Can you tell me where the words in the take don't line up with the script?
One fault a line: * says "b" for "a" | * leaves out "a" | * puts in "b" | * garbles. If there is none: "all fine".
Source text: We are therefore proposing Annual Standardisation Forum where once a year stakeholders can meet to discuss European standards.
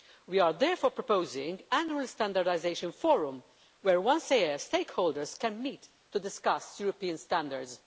all fine